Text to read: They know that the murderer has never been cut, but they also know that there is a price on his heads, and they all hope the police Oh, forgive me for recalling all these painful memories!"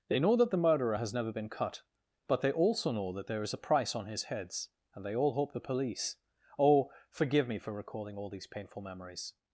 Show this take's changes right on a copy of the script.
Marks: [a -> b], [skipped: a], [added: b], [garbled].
They know that the murderer has never been cut, but they also know that there is a price on his heads, and they all hope the police Oh, forgive me for recalling all these painful memories!"